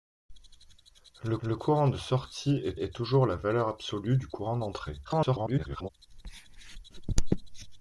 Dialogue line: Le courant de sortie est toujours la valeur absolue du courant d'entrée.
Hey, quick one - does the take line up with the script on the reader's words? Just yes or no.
no